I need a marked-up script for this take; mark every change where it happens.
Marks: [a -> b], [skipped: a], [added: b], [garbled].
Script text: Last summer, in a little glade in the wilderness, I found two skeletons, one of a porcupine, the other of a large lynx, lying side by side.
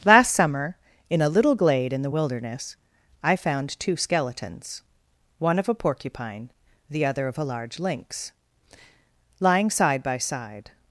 Last summer, in a little glade in the wilderness, I found two skeletons, one of a porcupine, the other of a large lynx, lying side by side.